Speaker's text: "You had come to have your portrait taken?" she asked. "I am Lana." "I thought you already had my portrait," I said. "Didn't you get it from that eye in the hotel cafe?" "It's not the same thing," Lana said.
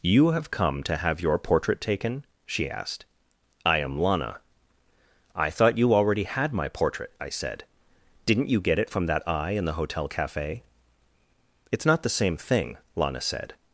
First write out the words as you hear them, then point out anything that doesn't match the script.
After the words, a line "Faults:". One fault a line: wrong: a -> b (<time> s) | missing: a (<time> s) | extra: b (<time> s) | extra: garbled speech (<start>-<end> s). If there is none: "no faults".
"You have come to have your portrait taken?" she asked. "I am Lana." "I thought you already had my portrait," I said. "Didn't you get it from that eye in the hotel cafe?" "It's not the same thing," Lana said.
Faults:
wrong: had -> have (0.3 s)